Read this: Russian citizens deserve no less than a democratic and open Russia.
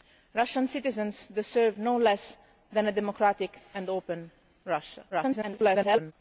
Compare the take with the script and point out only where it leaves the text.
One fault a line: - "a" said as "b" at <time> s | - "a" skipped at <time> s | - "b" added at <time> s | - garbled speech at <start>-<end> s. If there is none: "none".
- garbled speech at 5.1-6.1 s